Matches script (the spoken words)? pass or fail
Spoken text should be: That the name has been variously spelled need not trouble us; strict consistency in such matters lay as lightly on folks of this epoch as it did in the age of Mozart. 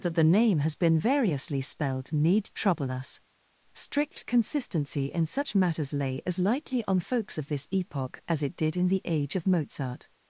fail